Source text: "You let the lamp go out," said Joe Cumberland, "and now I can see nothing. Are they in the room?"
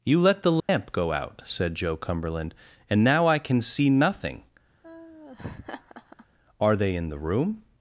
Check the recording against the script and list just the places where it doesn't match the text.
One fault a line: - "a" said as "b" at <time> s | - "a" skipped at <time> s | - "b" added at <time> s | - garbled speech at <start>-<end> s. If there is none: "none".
none